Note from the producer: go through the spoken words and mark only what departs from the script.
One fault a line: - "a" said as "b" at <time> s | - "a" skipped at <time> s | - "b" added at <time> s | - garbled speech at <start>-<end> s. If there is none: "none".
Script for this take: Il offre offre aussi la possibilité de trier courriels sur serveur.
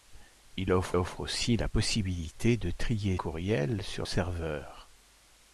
none